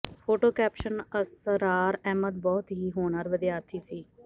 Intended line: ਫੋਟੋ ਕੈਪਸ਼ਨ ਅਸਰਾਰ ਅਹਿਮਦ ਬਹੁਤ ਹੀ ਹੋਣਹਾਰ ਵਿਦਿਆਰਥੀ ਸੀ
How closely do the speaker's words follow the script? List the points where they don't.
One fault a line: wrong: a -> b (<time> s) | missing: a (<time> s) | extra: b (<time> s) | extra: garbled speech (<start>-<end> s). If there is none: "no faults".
no faults